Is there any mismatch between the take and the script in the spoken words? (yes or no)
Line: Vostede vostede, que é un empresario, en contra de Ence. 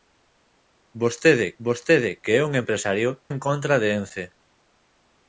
no